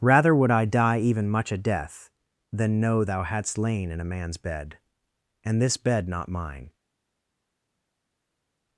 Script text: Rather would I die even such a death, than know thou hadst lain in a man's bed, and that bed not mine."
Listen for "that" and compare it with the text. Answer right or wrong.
wrong